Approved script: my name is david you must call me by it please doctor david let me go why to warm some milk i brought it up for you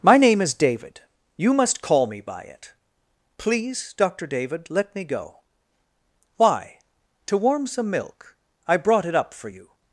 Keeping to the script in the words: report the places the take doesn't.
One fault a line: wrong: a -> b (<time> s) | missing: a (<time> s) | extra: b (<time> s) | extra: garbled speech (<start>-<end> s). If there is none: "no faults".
no faults